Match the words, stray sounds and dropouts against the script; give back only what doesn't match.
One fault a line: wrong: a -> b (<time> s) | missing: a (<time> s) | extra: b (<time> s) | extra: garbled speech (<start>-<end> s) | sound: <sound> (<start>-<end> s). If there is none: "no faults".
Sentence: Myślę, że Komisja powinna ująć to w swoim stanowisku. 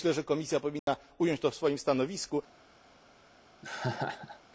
sound: dropout (0.8-0.9 s)
sound: laugh (3.6-4.4 s)